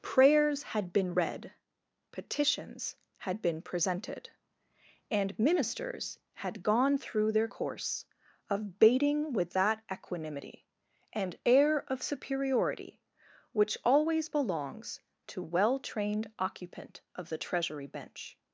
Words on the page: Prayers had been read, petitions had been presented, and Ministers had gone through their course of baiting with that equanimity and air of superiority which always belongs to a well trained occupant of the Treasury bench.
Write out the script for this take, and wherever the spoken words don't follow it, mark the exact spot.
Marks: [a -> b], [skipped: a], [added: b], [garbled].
Prayers had been read, petitions had been presented, and Ministers had gone through their course of baiting with that equanimity and air of superiority which always belongs to [skipped: a] well trained occupant of the Treasury bench.